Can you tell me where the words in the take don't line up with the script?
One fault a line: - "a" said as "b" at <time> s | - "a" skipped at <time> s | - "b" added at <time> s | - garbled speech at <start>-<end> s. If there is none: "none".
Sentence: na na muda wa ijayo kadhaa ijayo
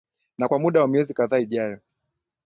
- "na" said as "kwa" at 0.5 s
- "ijayo" said as "miezi" at 0.9 s